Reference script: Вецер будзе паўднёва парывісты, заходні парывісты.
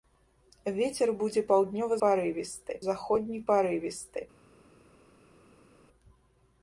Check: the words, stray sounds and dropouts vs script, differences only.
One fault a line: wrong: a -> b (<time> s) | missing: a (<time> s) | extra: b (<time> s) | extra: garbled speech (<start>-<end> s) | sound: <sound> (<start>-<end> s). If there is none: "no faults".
no faults